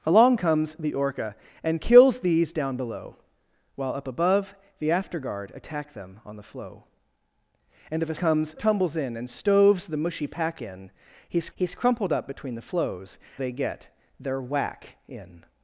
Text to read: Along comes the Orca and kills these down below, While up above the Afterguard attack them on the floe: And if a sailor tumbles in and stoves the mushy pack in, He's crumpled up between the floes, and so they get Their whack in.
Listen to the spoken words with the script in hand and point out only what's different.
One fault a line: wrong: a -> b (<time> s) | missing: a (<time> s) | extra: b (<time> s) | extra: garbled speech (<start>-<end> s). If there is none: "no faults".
wrong: sailor -> comes (8.2 s)
extra: He's (11.5 s)
missing: and so (13.2 s)